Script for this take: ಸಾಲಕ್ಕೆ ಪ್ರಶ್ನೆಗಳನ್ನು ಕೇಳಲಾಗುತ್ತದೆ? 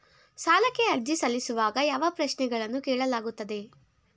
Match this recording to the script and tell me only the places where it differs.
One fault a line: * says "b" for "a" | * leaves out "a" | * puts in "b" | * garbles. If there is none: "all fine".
* puts in "ಅರ್ಜಿ ಸಲ್ಲಿಸುವಾಗ ಯಾವ"